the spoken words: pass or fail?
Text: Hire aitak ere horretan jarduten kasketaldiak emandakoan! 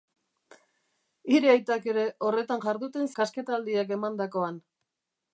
pass